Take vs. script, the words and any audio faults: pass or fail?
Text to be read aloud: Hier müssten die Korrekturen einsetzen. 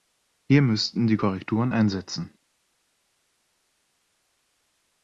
pass